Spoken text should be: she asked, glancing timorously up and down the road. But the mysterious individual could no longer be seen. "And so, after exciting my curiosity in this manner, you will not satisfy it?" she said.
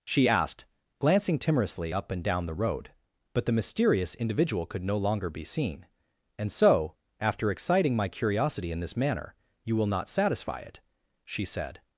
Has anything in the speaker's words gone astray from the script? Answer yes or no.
no